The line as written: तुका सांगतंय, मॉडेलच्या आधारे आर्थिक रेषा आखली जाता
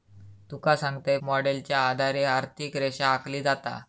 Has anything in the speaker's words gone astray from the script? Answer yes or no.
no